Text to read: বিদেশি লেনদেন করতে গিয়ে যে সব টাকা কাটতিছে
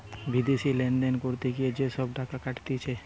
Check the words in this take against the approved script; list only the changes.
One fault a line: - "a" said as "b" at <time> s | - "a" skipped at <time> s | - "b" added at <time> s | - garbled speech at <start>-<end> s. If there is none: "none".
none